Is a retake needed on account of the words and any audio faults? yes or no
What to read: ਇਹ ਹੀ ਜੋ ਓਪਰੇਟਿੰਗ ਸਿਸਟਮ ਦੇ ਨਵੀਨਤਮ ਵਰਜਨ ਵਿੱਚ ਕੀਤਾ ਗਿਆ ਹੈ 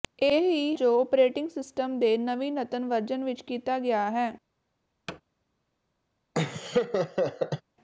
yes